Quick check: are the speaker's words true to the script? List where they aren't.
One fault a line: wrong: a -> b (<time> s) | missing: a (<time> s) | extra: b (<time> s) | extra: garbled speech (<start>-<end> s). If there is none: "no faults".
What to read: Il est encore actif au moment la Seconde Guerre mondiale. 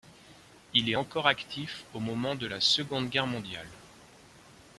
extra: de (2.4 s)